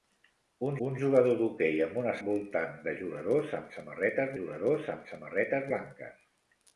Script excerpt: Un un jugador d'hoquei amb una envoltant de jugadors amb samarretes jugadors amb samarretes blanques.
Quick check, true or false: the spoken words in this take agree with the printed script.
true